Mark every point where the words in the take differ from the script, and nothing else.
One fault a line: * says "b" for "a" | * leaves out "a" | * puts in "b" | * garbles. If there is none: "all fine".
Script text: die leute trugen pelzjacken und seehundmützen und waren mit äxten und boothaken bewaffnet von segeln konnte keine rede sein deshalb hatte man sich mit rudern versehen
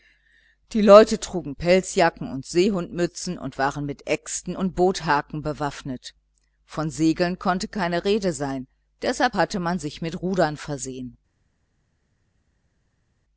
all fine